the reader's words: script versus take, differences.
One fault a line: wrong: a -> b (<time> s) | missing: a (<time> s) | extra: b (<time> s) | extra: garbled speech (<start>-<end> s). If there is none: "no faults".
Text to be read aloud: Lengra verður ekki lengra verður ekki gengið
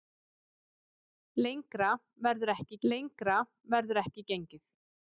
no faults